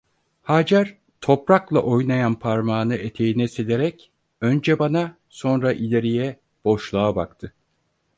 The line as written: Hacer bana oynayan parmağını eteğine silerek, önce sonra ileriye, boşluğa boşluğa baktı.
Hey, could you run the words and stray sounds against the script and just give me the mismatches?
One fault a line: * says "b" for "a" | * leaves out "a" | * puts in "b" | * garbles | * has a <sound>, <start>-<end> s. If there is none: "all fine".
* says "toprakla" for "bana"
* puts in "bana"
* leaves out "boşluğa"